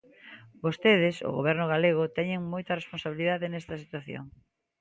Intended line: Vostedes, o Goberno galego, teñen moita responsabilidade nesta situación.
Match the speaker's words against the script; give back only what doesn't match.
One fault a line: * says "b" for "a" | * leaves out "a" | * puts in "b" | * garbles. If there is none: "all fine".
all fine